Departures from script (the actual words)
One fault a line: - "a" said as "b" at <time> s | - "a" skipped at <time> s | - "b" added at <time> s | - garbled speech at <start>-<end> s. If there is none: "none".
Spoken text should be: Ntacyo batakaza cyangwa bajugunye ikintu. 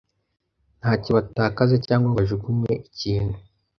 none